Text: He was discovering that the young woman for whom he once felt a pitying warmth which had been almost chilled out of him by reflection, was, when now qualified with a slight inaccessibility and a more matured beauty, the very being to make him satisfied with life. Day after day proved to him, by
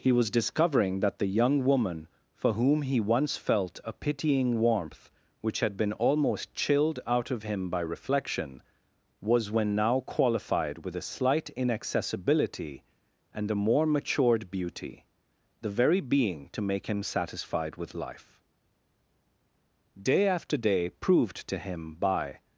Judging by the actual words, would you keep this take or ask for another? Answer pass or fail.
pass